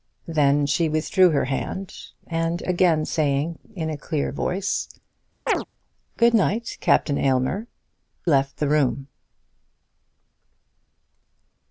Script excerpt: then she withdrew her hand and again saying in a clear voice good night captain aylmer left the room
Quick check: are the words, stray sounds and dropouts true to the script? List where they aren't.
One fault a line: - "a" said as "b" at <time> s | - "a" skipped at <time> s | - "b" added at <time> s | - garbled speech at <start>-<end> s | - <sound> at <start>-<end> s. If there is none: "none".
- chirp at 5.5-5.6 s